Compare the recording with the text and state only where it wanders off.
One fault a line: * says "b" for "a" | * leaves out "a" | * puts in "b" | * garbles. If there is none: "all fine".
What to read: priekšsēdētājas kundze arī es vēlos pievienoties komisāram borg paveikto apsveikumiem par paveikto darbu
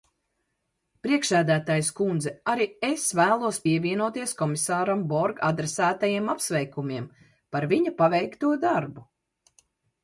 * says "adresētajiem" for "paveikto"
* puts in "viņa"